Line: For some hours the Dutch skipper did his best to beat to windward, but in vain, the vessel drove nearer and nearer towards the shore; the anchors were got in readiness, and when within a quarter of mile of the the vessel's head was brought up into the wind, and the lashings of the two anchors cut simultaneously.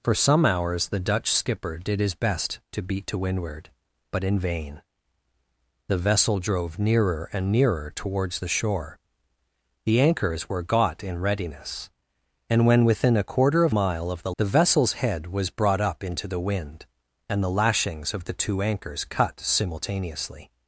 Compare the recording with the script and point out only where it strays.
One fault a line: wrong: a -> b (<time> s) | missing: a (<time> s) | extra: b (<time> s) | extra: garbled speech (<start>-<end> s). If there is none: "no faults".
no faults